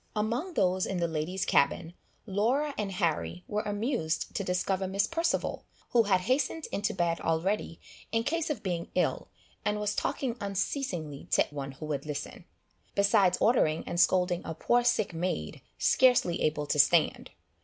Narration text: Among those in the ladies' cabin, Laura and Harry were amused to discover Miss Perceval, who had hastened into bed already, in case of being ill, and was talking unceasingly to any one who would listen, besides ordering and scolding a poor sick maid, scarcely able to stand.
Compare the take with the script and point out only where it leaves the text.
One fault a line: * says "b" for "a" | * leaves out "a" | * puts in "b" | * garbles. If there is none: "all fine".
* leaves out "any"